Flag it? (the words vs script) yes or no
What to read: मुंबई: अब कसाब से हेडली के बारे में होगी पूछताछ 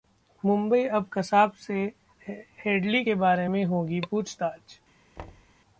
no